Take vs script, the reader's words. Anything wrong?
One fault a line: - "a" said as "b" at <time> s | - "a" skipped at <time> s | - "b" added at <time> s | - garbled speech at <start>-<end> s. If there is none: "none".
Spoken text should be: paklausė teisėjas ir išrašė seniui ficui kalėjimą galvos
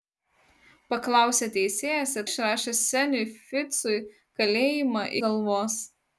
none